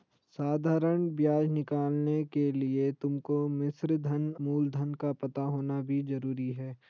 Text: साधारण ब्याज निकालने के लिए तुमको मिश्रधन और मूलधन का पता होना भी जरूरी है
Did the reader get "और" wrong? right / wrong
wrong